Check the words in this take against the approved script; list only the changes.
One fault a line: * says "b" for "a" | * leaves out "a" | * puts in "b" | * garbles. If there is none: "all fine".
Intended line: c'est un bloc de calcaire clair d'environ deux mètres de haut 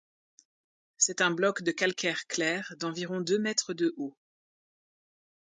all fine